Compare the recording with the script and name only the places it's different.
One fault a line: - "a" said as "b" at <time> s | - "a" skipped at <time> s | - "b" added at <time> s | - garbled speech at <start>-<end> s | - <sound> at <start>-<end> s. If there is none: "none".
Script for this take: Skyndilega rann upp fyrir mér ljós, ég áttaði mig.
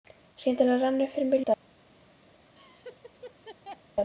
- "ljós ég áttaði" skipped at 1.4 s
- laugh at 2.5-3.8 s